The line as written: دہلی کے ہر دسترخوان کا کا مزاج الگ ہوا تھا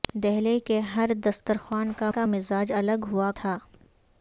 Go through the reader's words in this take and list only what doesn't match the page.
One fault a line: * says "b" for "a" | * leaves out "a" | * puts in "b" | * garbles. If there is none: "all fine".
all fine